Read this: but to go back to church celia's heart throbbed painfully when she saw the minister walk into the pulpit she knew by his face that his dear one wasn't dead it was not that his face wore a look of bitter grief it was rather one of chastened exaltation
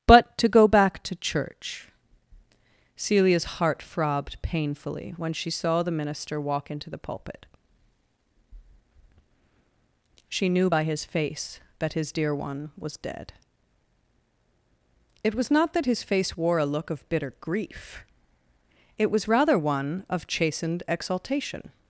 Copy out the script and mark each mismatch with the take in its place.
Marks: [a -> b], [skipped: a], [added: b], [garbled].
but to go back to church celia's heart throbbed painfully when she saw the minister walk into the pulpit she knew by his face that his dear one [wasn't -> was] dead it was not that his face wore a look of bitter grief it was rather one of chastened exaltation